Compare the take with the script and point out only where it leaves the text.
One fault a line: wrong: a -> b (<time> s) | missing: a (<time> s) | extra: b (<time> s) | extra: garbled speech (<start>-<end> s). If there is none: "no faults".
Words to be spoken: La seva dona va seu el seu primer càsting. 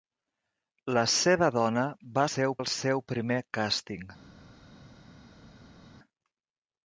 no faults